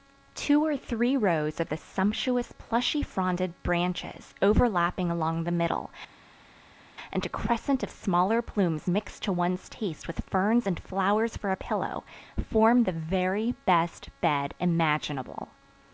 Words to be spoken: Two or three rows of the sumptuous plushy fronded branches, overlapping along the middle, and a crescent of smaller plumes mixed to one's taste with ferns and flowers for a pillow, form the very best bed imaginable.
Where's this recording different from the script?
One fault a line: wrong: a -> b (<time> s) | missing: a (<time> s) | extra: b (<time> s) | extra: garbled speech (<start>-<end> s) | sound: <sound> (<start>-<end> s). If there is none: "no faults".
no faults